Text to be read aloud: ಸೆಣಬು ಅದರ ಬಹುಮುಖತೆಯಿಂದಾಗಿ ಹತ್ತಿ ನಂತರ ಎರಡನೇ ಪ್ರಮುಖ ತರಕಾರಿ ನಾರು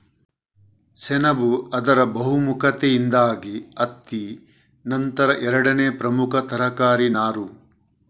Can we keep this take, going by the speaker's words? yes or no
yes